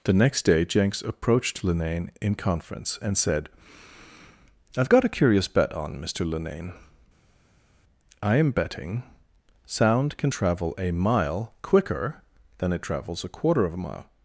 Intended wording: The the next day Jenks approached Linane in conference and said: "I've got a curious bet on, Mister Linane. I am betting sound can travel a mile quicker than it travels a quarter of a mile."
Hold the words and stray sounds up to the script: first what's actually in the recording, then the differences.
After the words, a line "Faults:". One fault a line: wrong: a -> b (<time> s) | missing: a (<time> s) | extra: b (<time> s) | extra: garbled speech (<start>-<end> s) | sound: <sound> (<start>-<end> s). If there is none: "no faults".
The next day Jenks approached Linane in conference and said: "I've got a curious bet on, Mister Linane. I am betting sound can travel a mile quicker than it travels a quarter of a mile."
Faults:
missing: the (0.1 s)